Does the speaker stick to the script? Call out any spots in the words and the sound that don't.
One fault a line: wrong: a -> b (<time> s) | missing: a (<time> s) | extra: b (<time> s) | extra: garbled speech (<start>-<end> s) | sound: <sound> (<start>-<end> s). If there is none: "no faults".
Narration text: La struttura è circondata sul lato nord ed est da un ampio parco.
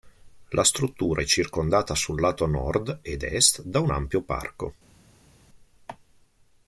no faults